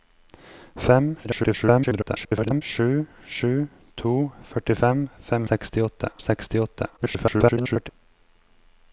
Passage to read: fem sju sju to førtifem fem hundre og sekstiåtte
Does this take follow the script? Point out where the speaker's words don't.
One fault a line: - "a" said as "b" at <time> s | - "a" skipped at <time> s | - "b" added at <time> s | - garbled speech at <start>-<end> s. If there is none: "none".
- garbled speech at 1.2-2.6 s
- "hundre" said as "sekstiåtte" at 5.5 s
- garbled speech at 7.0-7.9 s